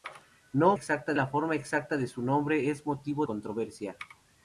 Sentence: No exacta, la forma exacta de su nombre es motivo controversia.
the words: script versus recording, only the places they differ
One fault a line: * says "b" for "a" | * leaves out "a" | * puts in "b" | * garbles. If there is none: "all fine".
all fine